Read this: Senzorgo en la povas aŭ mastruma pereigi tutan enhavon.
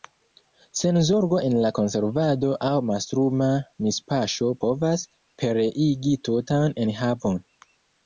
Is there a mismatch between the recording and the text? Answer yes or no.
yes